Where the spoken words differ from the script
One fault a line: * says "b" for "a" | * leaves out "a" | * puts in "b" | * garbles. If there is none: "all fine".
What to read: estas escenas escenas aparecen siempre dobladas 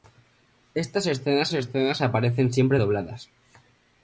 all fine